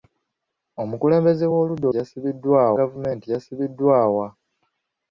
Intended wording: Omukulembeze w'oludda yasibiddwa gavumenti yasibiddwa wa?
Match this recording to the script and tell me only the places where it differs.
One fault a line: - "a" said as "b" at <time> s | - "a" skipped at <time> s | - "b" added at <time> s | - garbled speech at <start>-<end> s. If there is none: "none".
none